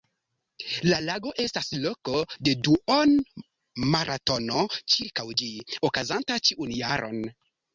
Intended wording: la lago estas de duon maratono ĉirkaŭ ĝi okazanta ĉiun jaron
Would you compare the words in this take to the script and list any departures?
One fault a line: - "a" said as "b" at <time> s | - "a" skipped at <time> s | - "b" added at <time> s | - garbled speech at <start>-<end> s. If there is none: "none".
- "loko" added at 1.8 s